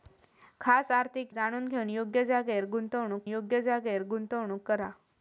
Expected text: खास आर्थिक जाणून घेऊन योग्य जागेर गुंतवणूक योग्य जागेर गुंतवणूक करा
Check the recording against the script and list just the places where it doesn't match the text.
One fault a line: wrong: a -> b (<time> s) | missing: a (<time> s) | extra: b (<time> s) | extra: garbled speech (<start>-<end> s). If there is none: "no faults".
no faults